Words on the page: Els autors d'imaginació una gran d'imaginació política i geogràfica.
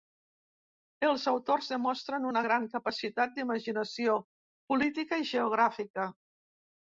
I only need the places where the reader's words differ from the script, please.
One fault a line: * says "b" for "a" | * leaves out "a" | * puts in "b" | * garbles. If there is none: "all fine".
* says "demostren" for "d'imaginació"
* puts in "capacitat"